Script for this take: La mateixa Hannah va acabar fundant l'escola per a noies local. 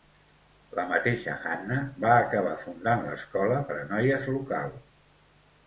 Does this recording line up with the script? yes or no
yes